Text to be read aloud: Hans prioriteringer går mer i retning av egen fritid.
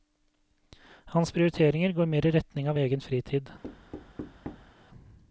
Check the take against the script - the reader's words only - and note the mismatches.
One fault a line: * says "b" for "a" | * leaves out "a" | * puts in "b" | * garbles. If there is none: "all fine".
all fine